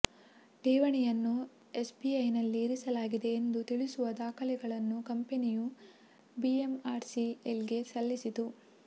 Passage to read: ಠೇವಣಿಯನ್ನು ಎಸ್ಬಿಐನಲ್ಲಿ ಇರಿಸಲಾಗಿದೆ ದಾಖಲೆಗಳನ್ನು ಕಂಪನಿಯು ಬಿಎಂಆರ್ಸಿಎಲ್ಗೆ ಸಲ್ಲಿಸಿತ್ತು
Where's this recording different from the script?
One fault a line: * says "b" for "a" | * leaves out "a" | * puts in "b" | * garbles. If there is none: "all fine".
* puts in "ಎಂದು ತಿಳಿಸುವ"